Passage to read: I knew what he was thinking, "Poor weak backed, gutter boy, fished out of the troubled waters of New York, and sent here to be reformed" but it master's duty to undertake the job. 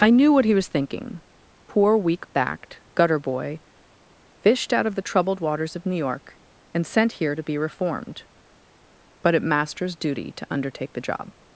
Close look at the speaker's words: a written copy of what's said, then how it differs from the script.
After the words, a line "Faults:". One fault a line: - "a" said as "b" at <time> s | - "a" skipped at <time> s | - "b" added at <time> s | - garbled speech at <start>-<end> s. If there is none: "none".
I knew what he was thinking, "Poor weak backed, gutter boy, fished out of the troubled waters of New York, and sent here to be reformed" but it master's duty to undertake the job.
Faults:
none